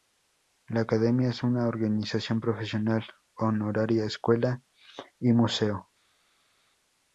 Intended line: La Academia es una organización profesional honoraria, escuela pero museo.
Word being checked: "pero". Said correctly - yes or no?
no